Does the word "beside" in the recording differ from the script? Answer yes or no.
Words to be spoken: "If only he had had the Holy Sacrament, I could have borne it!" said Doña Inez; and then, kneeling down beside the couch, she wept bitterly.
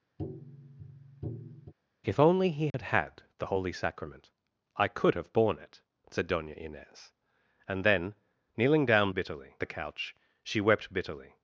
yes